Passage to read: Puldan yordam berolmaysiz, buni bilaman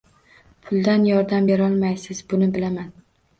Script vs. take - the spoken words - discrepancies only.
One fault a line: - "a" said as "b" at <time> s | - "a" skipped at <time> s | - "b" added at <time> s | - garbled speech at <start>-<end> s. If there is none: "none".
none